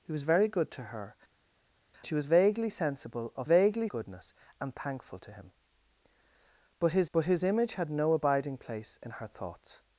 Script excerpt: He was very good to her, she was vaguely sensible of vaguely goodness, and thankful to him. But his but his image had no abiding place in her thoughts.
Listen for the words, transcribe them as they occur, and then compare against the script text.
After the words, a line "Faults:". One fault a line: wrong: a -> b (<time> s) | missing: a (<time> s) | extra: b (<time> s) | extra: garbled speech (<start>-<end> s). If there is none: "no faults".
He was very good to her, she was vaguely sensible of vaguely goodness, and thankful to him. But his but his image had no abiding place in her thoughts.
Faults:
no faults